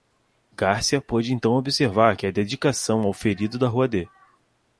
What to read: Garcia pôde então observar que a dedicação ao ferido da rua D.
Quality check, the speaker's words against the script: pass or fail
pass